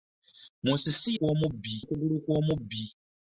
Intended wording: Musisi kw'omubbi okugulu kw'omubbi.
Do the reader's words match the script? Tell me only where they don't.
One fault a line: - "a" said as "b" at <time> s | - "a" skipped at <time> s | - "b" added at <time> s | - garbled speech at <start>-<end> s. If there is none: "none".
none